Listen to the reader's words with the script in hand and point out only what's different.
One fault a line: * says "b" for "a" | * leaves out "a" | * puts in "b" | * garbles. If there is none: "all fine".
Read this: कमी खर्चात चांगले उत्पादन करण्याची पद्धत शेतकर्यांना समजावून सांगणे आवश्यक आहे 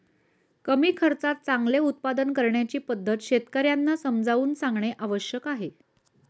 all fine